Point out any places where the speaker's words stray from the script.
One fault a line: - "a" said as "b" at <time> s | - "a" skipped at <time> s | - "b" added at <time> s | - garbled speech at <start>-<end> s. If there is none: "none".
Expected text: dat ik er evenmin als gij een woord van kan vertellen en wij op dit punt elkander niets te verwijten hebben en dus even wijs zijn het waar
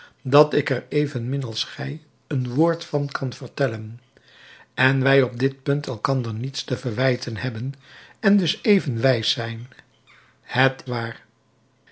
none